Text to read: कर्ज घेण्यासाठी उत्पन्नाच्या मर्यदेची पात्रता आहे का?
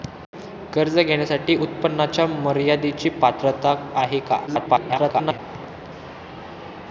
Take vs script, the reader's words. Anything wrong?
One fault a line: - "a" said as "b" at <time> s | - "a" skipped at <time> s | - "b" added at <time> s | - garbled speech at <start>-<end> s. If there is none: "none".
- garbled speech at 4.5-5.4 s